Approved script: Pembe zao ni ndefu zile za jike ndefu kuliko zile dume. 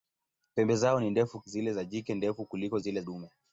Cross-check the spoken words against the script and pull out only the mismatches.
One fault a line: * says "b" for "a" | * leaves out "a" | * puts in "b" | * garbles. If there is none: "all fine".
all fine